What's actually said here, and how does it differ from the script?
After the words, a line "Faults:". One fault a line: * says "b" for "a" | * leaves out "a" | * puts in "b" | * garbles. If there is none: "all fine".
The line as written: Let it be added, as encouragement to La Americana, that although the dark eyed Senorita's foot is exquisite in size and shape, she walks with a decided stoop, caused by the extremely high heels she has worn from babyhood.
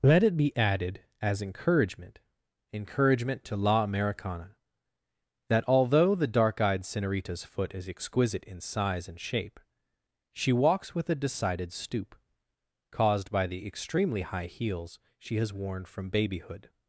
Let it be added, as encouragement encouragement to La Americana, that although the dark eyed Senorita's foot is exquisite in size and shape, she walks with a decided stoop, caused by the extremely high heels she has worn from babyhood.
Faults:
* puts in "encouragement"